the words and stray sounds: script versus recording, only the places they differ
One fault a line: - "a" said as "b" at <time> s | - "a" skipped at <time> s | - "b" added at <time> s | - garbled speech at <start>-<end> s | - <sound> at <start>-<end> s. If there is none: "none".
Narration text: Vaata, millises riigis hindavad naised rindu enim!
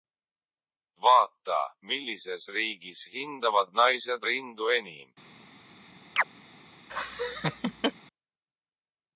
- chirp at 6.2-6.2 s
- laugh at 6.9-7.9 s